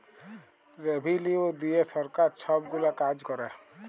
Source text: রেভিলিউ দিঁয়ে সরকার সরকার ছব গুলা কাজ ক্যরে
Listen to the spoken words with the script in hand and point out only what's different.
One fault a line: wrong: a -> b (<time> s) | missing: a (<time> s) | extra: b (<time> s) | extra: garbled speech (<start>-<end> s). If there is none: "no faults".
missing: সরকার (2.3 s)